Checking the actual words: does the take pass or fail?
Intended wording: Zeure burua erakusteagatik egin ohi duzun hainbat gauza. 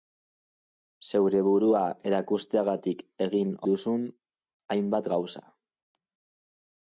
fail